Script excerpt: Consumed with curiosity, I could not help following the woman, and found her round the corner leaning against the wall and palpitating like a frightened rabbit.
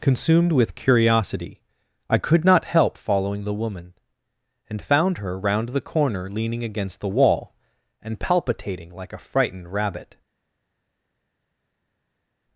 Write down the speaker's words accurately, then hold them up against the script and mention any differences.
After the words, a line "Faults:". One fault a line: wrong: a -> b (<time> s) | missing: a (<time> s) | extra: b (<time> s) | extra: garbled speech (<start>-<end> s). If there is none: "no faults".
Consumed with curiosity, I could not help following the woman, and found her round the corner leaning against the wall and palpitating like a frightened rabbit.
Faults:
no faults